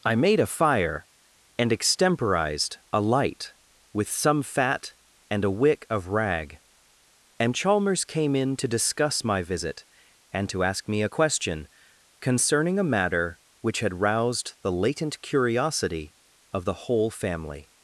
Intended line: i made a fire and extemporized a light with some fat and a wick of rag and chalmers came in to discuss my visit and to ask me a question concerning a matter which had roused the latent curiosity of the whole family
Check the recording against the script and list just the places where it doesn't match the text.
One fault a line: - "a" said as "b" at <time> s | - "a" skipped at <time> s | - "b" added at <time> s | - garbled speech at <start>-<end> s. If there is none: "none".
none